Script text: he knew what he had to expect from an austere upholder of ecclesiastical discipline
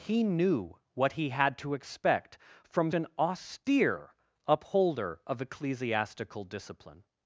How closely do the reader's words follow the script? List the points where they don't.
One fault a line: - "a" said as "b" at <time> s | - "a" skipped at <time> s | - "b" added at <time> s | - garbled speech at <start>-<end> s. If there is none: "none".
none